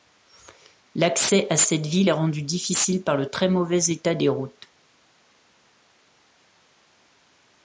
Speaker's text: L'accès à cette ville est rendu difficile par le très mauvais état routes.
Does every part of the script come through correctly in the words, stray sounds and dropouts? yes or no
no